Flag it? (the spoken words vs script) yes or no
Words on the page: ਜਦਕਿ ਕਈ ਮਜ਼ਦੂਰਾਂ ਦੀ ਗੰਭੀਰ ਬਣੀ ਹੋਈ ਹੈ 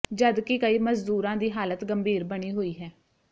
yes